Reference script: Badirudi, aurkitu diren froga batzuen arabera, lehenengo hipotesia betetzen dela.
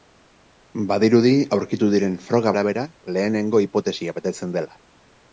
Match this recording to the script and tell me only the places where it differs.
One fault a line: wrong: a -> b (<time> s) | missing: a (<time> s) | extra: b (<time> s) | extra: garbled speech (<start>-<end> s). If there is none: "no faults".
missing: batzuen (2.5 s)